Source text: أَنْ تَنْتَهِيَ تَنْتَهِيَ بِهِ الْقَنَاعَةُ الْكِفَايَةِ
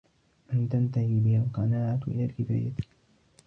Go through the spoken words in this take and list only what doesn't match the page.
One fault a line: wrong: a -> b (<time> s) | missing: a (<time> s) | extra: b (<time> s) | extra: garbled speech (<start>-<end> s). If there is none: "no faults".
missing: تَنْتَهِيَ (1.2 s)
extra: إلَى (2.1 s)